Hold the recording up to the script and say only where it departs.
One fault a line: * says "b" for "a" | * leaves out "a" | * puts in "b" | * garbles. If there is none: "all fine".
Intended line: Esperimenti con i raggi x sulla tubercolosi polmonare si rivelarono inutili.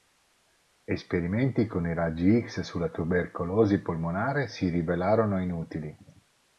all fine